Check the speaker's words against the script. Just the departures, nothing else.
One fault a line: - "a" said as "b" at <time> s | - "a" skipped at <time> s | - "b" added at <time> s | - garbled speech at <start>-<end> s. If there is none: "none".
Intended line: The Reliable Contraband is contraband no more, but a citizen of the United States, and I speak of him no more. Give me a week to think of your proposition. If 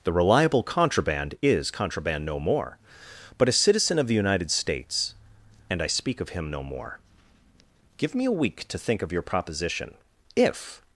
none